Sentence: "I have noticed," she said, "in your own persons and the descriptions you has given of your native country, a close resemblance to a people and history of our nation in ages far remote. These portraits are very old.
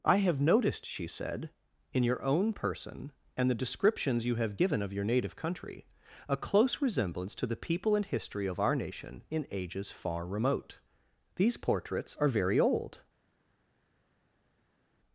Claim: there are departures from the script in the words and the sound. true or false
true